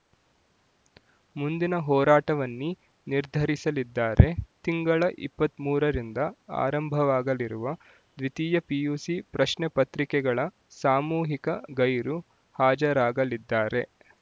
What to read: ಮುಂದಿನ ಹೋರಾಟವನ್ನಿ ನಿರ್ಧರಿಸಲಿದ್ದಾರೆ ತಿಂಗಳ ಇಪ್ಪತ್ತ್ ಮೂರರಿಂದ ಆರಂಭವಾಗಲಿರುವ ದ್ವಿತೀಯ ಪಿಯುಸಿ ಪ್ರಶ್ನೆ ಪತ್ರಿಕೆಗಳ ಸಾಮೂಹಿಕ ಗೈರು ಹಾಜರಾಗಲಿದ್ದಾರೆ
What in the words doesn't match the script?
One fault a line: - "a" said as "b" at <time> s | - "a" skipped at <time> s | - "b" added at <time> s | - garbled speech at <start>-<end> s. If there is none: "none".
none